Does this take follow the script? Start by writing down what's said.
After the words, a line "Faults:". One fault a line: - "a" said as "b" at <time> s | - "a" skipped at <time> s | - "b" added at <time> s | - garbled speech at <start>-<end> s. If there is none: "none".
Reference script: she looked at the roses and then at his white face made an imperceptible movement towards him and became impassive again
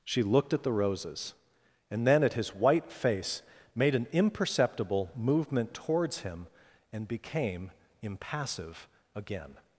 she looked at the roses and then at his white face made an imperceptible movement towards him and became impassive again
Faults:
none